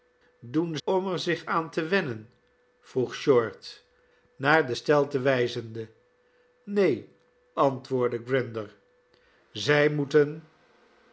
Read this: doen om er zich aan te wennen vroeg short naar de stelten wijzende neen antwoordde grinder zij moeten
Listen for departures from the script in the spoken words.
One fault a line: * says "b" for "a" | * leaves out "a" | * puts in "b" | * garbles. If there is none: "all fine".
all fine